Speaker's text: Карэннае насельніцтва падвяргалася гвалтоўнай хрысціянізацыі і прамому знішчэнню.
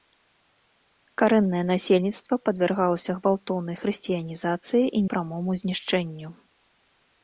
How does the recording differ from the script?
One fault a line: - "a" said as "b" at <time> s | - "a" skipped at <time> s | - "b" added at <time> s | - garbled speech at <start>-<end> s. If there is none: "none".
none